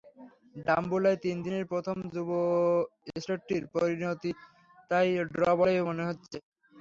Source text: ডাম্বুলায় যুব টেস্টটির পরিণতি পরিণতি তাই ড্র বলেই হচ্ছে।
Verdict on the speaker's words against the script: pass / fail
fail